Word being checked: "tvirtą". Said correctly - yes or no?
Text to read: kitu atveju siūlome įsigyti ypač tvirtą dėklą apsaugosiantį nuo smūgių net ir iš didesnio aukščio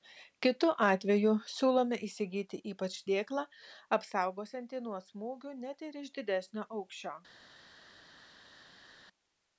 no